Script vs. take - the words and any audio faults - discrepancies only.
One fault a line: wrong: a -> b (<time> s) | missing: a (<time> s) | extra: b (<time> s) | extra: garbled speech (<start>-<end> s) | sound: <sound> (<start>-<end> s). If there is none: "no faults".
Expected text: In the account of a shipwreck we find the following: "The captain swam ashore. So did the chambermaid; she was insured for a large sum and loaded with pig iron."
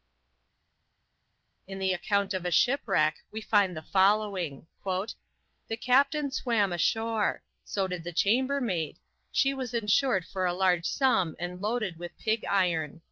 no faults